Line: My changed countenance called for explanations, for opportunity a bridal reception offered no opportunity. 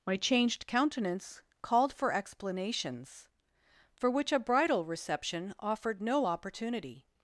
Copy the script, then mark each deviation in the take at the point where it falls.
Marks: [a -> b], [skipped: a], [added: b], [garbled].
My changed countenance called for explanations, for [opportunity -> which] a bridal reception offered no opportunity.